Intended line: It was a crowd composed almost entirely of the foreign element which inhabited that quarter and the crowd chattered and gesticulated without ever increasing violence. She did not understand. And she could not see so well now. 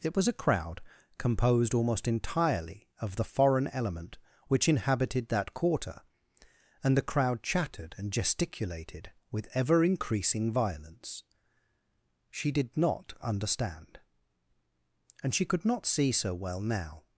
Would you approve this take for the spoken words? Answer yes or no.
no